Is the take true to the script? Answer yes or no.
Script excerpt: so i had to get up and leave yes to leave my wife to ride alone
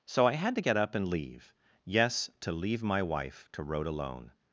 no